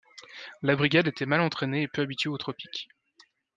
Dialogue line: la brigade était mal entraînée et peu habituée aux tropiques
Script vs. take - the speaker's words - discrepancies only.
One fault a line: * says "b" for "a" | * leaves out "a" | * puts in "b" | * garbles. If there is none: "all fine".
all fine